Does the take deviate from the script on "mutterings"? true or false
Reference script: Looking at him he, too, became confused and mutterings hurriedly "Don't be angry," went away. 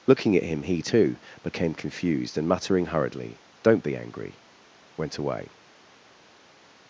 true